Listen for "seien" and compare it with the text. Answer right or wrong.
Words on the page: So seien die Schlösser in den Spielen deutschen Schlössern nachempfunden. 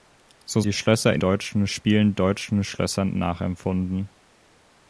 wrong